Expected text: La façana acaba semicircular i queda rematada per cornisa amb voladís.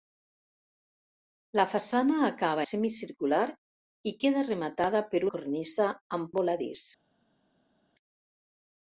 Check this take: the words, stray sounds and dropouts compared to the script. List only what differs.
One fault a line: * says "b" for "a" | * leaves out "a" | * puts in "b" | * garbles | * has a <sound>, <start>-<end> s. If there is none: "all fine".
all fine